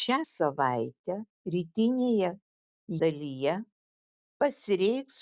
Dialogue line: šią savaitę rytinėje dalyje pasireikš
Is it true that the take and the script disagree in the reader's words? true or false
false